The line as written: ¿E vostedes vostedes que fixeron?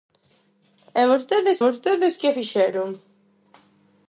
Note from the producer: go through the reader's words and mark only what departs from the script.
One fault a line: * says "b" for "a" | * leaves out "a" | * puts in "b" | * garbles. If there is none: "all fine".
all fine